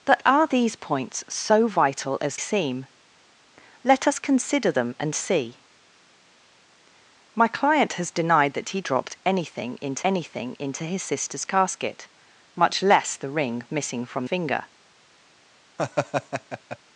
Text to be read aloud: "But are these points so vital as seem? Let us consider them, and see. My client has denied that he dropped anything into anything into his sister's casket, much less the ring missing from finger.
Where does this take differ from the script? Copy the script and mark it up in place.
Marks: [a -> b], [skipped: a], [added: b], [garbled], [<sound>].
"But are these points so vital as seem? Let us consider them, and see. My client has denied that he dropped anything into anything into his sister's casket, much less the ring missing from finger. [laugh]